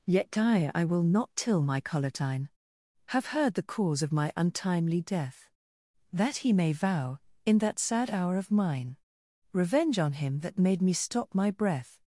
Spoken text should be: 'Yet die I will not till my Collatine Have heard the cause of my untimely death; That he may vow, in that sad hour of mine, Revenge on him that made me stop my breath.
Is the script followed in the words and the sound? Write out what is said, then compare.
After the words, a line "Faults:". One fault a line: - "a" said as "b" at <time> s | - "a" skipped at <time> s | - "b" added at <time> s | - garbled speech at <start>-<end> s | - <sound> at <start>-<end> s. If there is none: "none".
'Yet die I will not till my Collatine Have heard the cause of my untimely death; That he may vow, in that sad hour of mine, Revenge on him that made me stop my breath.
Faults:
none